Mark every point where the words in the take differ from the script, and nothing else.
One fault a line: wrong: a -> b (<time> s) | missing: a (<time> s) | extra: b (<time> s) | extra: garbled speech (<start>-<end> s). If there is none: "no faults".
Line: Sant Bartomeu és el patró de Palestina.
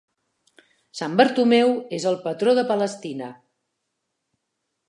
no faults